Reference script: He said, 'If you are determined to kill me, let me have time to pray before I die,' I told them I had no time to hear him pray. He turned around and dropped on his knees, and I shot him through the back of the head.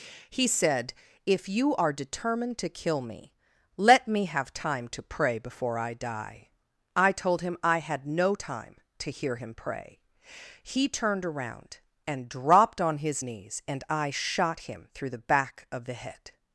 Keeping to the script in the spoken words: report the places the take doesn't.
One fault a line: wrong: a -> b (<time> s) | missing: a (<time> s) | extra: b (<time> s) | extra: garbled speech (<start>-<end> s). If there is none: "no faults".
wrong: them -> him (7.4 s)